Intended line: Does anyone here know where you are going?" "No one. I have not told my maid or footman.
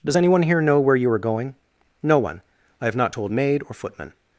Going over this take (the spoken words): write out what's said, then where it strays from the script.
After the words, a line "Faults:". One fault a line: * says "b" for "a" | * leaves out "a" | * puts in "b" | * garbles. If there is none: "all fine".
Does anyone here know where you are going?" "No one. I have not told maid or footman.
Faults:
* leaves out "my"